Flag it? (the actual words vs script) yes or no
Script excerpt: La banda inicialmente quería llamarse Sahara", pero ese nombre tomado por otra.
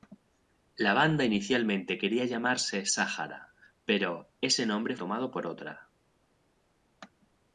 no